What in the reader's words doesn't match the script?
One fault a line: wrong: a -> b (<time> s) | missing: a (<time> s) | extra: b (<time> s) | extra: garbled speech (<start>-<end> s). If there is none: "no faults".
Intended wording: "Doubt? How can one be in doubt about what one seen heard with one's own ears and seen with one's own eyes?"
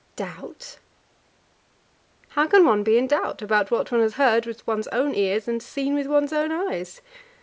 wrong: seen -> has (4.0 s)